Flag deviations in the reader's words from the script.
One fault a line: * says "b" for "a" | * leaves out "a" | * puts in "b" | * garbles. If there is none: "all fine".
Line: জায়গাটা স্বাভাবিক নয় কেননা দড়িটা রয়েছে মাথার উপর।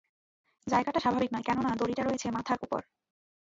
all fine